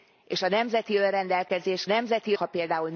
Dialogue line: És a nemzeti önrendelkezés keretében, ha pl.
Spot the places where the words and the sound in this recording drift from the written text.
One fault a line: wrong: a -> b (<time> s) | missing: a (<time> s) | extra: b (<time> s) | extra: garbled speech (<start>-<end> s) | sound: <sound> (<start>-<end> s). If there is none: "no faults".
wrong: keretében -> nemzeti (1.8 s)